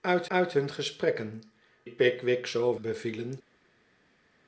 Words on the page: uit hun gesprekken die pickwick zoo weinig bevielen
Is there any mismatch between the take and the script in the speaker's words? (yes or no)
yes